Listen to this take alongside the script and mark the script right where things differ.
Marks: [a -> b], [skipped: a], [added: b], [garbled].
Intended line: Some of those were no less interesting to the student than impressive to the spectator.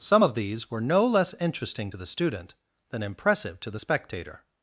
Some of [those -> these] were no less interesting to the student than impressive to the spectator.